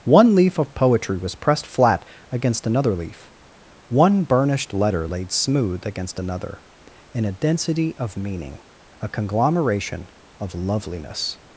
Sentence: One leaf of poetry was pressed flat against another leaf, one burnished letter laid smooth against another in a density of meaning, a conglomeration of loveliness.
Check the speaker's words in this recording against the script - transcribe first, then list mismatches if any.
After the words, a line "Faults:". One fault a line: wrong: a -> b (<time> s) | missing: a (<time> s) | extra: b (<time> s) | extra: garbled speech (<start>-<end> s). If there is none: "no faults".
One leaf of poetry was pressed flat against another leaf, one burnished letter laid smooth against another in a density of meaning, a conglomeration of loveliness.
Faults:
no faults